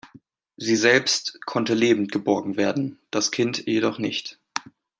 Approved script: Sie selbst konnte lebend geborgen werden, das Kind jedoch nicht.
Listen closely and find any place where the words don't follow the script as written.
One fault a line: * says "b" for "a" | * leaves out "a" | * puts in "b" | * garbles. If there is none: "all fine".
all fine